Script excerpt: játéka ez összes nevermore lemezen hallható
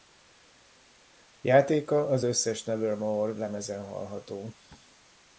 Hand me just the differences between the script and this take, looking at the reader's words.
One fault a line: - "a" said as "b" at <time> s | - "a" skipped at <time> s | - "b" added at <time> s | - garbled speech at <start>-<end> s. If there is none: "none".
- "ez" said as "az" at 2.1 s